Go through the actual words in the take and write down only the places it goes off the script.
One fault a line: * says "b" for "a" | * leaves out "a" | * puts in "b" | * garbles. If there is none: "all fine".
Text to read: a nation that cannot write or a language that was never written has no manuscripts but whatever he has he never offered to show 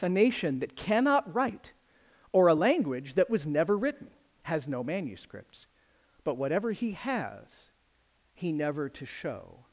* leaves out "offered"